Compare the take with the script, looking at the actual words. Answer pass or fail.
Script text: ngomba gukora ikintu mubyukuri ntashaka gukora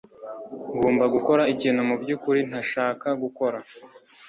pass